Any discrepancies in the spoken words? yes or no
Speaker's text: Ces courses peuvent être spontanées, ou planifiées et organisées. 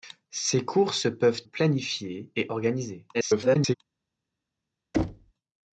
yes